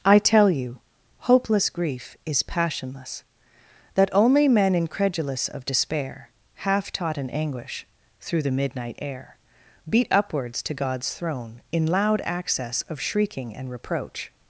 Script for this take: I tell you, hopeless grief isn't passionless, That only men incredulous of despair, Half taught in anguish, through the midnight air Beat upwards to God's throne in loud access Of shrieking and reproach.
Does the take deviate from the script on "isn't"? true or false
true